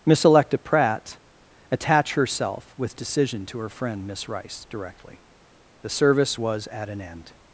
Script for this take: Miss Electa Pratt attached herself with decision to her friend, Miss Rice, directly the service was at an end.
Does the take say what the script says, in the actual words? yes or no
no